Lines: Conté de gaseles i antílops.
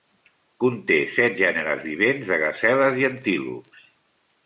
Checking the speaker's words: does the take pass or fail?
fail